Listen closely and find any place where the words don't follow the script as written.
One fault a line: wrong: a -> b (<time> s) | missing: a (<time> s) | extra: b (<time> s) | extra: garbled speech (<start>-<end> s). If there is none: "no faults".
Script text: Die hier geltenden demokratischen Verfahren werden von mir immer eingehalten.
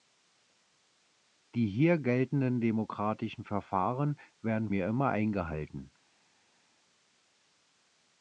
missing: von (4.7 s)